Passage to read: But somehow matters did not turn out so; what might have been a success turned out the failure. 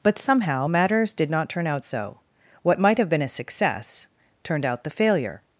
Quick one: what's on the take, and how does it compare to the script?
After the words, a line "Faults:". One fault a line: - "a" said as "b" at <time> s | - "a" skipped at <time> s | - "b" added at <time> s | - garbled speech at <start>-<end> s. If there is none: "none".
But somehow matters did not turn out so; what might have been a success turned out the failure.
Faults:
none